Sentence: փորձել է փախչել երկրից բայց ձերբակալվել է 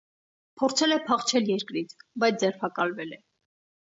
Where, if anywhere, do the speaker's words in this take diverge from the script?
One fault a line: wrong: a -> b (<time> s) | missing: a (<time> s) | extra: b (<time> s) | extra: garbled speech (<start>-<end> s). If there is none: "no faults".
no faults